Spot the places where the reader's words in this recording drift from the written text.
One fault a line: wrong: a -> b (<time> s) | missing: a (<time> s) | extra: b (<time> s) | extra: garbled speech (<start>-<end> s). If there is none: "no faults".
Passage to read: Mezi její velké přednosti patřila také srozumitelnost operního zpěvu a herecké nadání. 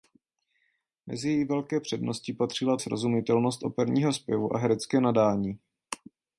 missing: také (2.8 s)